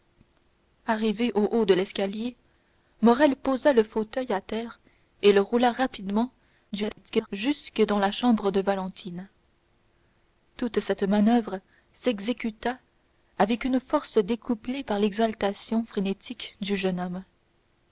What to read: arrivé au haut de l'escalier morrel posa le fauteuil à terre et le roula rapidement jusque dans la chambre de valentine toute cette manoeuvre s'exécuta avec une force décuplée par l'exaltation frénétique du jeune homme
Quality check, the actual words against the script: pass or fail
fail